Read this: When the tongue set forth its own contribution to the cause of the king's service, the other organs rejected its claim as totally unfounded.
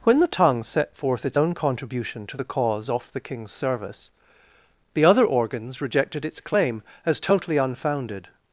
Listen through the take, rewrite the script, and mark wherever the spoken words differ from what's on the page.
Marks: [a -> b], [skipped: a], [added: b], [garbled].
When the tongue set forth its own contribution to the cause [of -> off] the king's service, the other organs rejected its claim as totally unfounded.